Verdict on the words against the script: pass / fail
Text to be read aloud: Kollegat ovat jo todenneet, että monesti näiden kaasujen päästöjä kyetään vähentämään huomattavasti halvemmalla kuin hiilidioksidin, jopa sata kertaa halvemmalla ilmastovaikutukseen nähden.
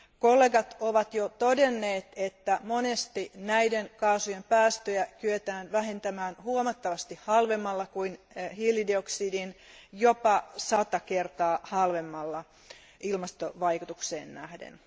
pass